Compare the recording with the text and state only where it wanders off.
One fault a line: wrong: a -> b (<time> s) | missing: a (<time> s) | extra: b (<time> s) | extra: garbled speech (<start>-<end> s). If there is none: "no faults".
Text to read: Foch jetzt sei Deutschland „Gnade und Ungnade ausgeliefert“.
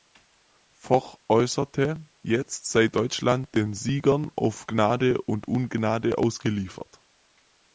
extra: äußerte (1.3 s)
extra: den Siegern auf (3.5 s)